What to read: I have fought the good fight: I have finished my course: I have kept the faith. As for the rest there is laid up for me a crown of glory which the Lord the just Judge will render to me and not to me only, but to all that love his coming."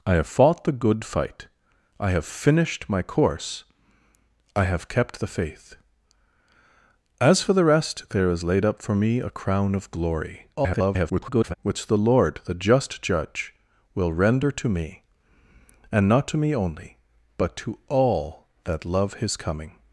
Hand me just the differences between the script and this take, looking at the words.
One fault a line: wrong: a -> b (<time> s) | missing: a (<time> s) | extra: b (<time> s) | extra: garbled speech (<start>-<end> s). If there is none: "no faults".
extra: garbled speech (10.5-11.5 s)